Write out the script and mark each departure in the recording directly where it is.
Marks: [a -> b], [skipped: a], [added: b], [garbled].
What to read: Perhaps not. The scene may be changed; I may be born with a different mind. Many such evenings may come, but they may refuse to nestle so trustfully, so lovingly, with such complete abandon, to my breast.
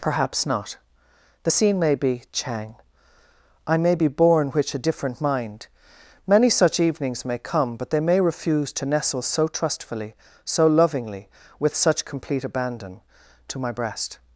Perhaps not. The scene may be [changed; -> chang] I may be born [with -> which] a different mind. Many such evenings may come, but they may refuse to nestle so trustfully, so lovingly, with such complete abandon, to my breast.